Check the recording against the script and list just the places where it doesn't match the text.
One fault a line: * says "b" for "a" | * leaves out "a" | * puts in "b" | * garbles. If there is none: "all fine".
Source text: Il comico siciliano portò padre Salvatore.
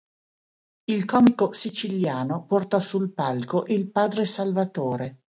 * puts in "sul palco il"